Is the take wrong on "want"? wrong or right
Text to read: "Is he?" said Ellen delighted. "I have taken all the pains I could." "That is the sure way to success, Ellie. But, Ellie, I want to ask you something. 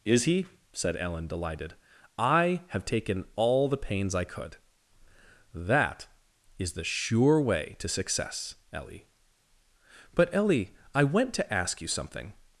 wrong